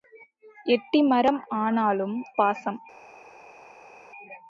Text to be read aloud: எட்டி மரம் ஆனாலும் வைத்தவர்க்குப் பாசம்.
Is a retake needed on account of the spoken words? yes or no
yes